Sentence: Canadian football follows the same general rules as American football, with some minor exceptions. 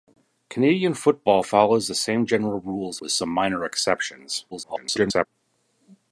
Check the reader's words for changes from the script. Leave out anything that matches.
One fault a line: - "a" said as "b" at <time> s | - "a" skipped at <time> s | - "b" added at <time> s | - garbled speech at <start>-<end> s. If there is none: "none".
- "as American football" skipped at 3.0 s
- garbled speech at 4.5-5.3 s